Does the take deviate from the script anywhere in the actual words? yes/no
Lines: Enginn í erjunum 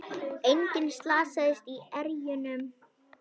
yes